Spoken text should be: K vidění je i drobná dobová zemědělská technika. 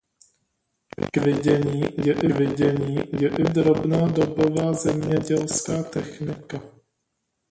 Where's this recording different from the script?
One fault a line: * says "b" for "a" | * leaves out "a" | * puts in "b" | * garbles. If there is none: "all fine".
* puts in "vidění je i"